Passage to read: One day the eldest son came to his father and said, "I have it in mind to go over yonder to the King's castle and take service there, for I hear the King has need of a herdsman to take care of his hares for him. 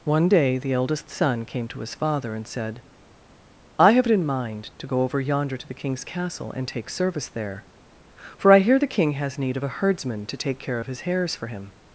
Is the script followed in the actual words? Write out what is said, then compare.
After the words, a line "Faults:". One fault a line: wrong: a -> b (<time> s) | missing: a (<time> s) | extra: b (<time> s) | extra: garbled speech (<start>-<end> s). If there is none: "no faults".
One day the eldest son came to his father and said, "I have it in mind to go over yonder to the King's castle and take service there, for I hear the King has need of a herdsman to take care of his hares for him.
Faults:
no faults